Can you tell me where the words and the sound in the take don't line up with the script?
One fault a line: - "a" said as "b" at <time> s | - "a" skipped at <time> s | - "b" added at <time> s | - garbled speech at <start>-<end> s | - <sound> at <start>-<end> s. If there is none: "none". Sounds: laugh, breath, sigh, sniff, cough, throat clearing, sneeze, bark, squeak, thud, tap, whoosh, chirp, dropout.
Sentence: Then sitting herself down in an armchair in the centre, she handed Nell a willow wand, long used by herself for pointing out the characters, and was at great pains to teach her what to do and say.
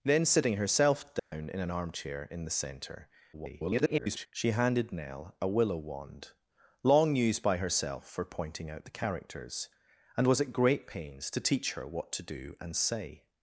- dropout at 1.2-1.3 s
- garbled speech at 3.3-4.3 s